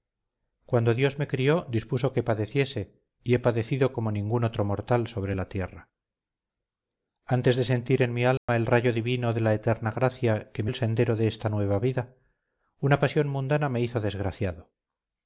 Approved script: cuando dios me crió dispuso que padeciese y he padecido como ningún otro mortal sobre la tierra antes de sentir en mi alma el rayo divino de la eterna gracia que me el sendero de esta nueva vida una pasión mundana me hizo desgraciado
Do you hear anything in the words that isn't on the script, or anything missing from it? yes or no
no